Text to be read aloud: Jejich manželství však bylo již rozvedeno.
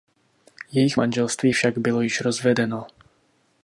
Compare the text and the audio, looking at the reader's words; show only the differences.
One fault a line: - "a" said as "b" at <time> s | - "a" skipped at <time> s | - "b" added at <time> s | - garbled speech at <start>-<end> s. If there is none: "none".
none